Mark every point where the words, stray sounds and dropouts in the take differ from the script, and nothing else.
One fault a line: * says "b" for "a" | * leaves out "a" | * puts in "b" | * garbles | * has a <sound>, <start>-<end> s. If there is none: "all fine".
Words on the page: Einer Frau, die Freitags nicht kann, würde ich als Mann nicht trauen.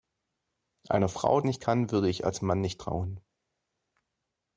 * leaves out "die Freitags"